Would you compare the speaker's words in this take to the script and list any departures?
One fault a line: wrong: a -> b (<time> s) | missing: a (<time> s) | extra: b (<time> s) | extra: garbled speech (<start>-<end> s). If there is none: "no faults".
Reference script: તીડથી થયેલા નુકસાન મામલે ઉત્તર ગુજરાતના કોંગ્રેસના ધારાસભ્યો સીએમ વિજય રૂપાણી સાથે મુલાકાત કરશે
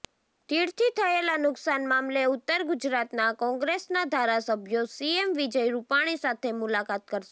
no faults